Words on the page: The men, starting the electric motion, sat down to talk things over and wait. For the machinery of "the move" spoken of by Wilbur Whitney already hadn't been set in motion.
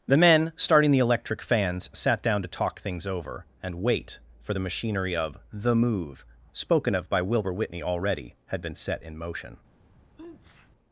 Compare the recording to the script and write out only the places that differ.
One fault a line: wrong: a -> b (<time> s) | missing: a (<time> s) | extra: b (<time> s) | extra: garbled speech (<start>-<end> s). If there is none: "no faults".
wrong: motion -> fans (1.4 s)
wrong: hadn't -> had (8.5 s)